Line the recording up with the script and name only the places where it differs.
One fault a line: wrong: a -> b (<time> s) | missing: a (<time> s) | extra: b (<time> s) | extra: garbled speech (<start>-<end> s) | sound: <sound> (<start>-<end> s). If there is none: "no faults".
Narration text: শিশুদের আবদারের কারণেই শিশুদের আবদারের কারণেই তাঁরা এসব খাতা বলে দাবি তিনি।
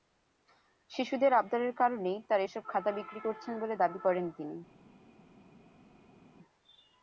missing: শিশুদের আবদারের কারণেই (2.2 s)
extra: বিক্রি করছেন (2.9 s)
extra: করেন (4.0 s)